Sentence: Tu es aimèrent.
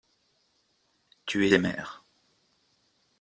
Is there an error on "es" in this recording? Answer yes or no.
no